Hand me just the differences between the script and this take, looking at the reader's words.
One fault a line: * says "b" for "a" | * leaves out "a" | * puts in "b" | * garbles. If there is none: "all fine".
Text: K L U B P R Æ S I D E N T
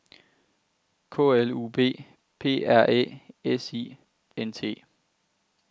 * leaves out "E"